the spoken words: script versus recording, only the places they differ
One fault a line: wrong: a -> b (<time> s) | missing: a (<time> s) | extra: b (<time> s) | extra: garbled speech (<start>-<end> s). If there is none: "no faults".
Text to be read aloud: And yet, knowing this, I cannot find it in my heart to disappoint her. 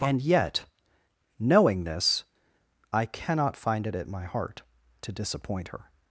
wrong: in -> at (4.0 s)